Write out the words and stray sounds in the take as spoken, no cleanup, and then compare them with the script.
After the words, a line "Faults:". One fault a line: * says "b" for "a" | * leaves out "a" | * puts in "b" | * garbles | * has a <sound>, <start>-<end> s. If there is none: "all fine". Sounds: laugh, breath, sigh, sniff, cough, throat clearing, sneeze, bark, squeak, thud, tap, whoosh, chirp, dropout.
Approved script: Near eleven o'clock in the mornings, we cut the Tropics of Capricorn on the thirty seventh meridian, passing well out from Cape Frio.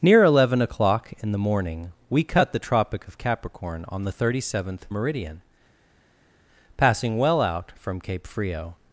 Near eleven o'clock in the morning, we cut the Tropic of Capricorn on the thirty seventh meridian, passing well out from Cape Frio.
Faults:
* says "morning" for "mornings"
* says "Tropic" for "Tropics"